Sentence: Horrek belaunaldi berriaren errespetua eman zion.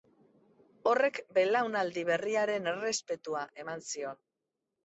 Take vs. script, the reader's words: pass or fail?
pass